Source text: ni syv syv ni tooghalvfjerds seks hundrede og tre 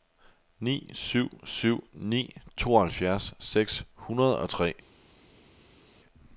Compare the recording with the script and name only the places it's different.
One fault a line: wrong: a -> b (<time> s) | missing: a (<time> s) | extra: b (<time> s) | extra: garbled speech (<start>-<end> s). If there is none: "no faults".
no faults